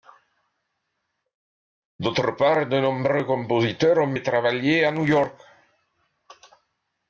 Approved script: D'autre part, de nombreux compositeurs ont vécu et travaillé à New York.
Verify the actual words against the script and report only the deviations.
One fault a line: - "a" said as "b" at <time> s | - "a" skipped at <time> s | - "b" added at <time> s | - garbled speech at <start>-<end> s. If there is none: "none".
- "vécu" skipped at 4.2 s